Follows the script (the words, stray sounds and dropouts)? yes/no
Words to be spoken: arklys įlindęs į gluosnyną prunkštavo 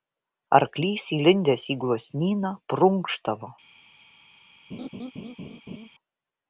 no